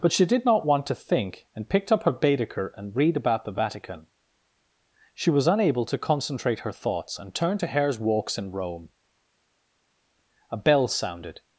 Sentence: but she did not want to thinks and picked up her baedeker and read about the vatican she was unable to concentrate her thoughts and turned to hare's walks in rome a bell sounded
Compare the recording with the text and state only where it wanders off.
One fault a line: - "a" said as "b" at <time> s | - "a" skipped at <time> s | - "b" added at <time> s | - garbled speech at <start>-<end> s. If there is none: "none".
- "thinks" said as "think" at 0.9 s